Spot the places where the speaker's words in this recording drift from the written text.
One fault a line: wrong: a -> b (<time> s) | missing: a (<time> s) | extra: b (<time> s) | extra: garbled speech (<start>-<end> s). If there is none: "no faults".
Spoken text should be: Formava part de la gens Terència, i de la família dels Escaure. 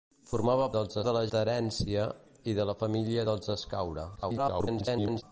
wrong: part -> dels (0.7 s)
missing: gens (1.2 s)
extra: garbled speech (4.2-5.2 s)